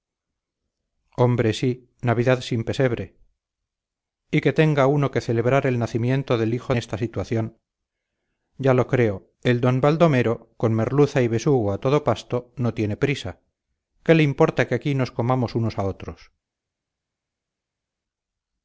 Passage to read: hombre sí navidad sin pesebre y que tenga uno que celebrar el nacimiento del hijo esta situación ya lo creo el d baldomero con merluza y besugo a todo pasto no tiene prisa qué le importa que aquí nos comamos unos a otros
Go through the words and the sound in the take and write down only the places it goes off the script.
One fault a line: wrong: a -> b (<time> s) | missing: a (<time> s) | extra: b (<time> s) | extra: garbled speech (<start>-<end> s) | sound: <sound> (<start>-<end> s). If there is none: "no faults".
no faults